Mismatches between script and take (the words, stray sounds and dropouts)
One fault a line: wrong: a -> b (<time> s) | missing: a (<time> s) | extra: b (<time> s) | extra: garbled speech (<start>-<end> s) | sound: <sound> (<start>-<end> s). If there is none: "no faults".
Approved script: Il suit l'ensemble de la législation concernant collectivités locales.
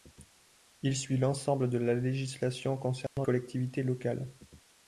sound: dropout (3.1-3.2 s)